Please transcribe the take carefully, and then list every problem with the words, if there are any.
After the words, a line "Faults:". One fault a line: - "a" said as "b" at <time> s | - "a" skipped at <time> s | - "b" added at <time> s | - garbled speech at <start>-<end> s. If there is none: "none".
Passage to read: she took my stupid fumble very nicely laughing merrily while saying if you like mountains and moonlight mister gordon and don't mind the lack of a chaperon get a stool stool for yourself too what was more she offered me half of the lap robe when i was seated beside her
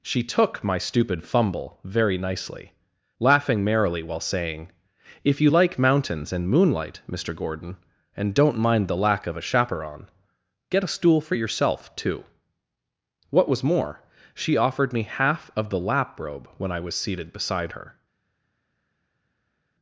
she took my stupid fumble very nicely laughing merrily while saying if you like mountains and moonlight mister gordon and don't mind the lack of a chaperon get a stool for yourself too what was more she offered me half of the lap robe when i was seated beside her
Faults:
- "stool" skipped at 11.2 s